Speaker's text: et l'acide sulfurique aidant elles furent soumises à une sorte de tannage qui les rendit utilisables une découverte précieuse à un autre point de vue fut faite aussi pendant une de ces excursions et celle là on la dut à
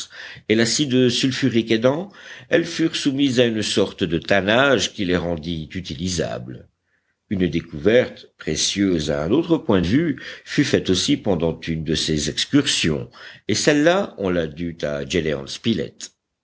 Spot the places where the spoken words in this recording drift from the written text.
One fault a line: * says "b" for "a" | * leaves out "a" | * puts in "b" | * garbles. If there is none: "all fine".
all fine